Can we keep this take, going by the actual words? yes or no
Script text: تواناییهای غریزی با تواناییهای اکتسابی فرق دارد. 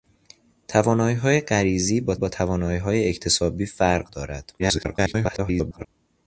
no